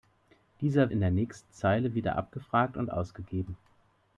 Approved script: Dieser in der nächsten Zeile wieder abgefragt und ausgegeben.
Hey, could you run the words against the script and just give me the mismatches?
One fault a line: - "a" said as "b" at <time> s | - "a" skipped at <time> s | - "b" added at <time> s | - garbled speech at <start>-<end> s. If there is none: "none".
none